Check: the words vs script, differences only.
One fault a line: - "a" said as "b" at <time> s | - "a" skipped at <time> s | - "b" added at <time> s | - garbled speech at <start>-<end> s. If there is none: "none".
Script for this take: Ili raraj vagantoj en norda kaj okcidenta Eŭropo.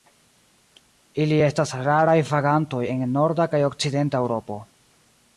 - "estas" added at 1.5 s